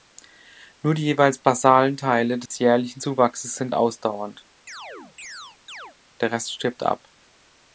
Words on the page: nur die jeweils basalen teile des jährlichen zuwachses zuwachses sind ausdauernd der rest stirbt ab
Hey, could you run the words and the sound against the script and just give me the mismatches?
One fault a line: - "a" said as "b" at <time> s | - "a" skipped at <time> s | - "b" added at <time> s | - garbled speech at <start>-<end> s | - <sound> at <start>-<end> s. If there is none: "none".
- dropout at 2.5-2.5 s
- "zuwachses" skipped at 3.6 s
- chirp at 4.7-6.0 s